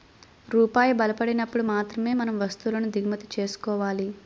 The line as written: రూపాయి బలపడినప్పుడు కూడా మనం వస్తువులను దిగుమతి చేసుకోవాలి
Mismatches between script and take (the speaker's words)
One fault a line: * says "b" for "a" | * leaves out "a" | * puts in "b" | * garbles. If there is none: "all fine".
* says "మాత్రమే" for "కూడా"